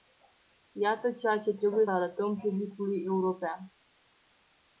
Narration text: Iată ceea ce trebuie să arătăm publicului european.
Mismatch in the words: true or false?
true